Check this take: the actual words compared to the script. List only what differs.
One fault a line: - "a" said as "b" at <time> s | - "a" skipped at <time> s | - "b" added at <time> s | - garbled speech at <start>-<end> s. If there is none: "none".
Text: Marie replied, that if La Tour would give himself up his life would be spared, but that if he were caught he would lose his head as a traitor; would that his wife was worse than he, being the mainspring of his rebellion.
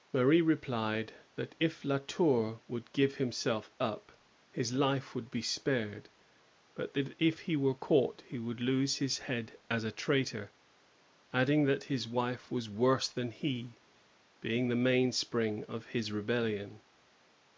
- "would" said as "adding" at 11.3 s